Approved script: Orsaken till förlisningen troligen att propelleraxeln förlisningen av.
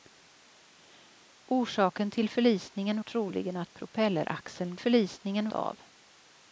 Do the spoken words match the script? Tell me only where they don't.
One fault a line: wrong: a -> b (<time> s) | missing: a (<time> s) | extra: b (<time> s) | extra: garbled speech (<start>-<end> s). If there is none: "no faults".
no faults